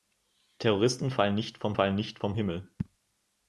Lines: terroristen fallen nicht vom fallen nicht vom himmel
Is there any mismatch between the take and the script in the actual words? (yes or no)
no